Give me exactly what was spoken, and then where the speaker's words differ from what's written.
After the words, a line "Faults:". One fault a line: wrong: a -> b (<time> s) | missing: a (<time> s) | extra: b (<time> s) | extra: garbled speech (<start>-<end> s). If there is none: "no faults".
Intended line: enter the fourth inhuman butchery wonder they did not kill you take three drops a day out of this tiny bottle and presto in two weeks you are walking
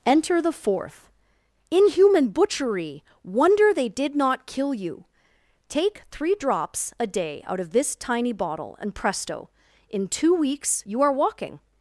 enter the fourth inhuman butchery wonder they did not kill you take three drops a day out of this tiny bottle and presto in two weeks you are walking
Faults:
no faults